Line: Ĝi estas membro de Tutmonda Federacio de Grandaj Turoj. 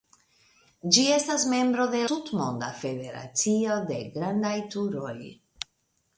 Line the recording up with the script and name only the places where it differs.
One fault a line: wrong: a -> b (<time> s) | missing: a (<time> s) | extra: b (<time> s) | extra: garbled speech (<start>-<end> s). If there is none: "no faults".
no faults